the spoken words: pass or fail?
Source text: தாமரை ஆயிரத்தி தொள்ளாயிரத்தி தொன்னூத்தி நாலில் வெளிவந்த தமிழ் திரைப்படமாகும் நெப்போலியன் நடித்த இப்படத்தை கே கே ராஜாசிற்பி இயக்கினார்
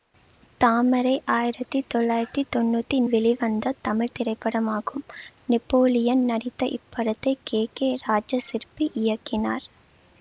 fail